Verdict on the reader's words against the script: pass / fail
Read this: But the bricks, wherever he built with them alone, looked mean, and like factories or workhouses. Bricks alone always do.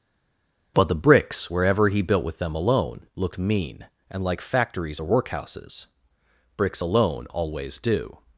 pass